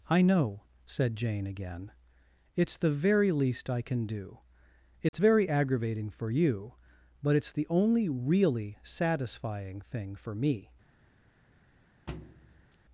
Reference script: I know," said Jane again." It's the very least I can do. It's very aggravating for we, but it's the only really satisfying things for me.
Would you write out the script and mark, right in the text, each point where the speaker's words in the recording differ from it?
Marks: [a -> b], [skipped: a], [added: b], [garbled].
I know," said Jane again." It's the very least I can do. It's very aggravating for [we, -> you] but it's the only really satisfying [things -> thing] for me.